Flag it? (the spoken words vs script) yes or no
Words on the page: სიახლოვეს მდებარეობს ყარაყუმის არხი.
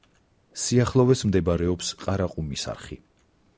no